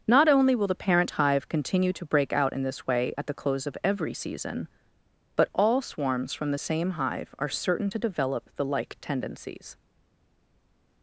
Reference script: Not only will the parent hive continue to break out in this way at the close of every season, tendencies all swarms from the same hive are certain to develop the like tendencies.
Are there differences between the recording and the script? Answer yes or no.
yes